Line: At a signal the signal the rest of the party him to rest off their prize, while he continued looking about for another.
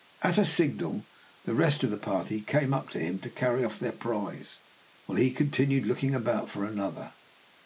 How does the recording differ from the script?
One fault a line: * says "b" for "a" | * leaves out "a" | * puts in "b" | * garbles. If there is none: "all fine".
* leaves out "signal the"
* puts in "came up to"
* says "carry" for "rest"